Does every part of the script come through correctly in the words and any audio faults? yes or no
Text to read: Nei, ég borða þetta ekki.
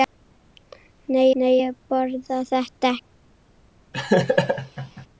no